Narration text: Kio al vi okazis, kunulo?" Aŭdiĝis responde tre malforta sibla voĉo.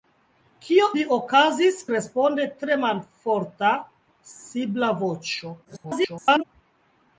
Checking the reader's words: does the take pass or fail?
fail